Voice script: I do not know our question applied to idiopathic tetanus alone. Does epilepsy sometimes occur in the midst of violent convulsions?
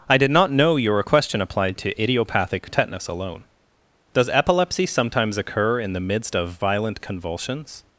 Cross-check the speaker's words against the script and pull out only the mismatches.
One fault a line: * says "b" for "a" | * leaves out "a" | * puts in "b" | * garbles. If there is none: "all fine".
* says "did" for "do"
* says "your" for "our"